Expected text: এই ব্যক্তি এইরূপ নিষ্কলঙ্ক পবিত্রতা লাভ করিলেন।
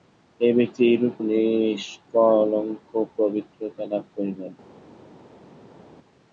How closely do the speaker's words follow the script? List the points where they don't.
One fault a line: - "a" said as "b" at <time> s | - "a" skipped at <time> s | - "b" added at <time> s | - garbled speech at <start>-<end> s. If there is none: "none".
none